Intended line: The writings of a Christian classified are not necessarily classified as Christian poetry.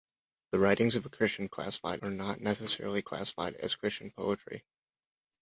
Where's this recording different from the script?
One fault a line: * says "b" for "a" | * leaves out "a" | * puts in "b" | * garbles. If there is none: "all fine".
all fine